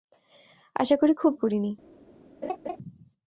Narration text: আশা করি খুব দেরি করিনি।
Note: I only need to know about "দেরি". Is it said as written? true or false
false